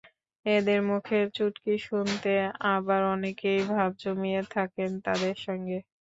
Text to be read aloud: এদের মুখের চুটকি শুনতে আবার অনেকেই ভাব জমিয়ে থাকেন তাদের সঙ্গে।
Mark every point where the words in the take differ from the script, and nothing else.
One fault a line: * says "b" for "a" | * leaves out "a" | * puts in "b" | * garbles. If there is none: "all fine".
all fine